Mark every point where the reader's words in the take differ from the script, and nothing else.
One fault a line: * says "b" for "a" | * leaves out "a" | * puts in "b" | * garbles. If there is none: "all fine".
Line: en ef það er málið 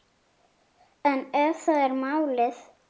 all fine